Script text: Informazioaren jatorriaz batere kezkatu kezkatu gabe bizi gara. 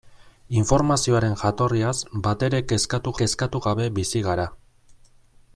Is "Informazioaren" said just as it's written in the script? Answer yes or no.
yes